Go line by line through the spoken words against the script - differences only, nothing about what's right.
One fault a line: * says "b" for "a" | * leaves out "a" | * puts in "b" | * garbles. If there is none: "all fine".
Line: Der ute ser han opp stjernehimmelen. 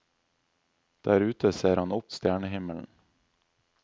all fine